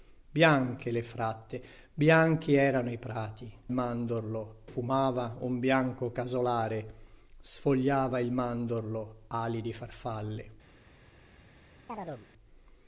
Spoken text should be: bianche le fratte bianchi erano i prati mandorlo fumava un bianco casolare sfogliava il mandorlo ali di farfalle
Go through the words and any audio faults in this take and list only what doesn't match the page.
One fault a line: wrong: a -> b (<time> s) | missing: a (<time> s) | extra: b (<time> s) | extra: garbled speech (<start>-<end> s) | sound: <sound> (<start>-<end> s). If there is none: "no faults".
sound: chirp (11.9-12.3 s)